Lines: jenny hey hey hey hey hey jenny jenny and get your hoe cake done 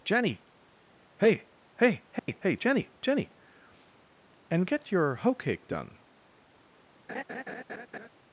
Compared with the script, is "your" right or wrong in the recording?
right